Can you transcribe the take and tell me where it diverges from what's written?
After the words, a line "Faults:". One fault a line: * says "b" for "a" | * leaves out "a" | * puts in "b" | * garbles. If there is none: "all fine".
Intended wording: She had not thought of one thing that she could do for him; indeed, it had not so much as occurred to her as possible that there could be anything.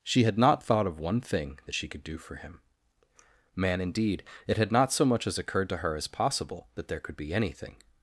She had not thought of one thing that she could do for him; man indeed, it had not so much as occurred to her as possible that there could be anything.
Faults:
* puts in "man"